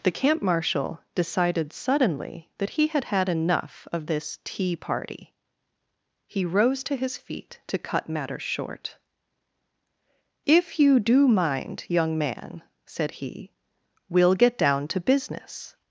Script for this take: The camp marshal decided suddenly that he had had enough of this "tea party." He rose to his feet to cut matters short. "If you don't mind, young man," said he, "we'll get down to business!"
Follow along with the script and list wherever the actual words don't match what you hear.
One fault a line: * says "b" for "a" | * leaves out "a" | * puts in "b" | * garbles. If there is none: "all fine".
* says "do" for "don't"